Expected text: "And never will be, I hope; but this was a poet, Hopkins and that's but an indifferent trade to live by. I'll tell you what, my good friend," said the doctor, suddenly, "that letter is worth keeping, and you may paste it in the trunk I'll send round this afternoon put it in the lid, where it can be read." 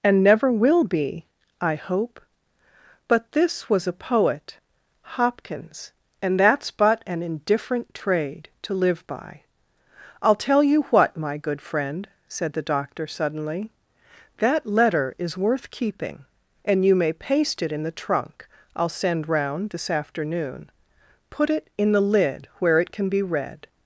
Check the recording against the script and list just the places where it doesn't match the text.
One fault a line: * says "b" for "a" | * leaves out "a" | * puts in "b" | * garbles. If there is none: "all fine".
all fine